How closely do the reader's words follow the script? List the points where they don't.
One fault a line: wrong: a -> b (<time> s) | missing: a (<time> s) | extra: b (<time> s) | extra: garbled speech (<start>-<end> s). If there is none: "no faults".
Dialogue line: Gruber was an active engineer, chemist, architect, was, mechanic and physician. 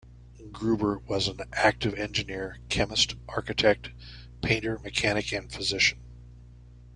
wrong: was -> painter (4.4 s)